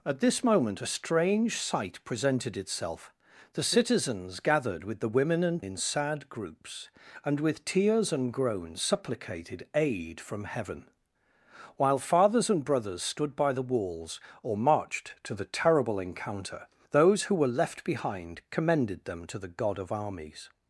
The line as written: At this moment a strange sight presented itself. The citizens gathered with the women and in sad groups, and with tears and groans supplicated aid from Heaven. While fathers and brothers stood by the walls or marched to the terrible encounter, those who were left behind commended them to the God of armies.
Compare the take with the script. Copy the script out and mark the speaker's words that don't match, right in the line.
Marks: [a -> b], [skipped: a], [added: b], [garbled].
At this moment a strange sight presented itself. The citizens gathered with the women and in sad groups, and with tears and groans supplicated aid from Heaven. While fathers and brothers stood by the walls or marched to the terrible encounter, those who were left behind commended them to the God of armies.